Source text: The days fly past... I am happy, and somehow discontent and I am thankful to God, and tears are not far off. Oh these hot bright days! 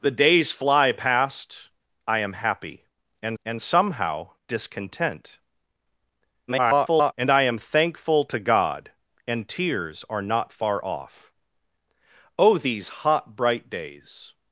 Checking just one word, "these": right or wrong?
right